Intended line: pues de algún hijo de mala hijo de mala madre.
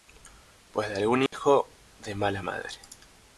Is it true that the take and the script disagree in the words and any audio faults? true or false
true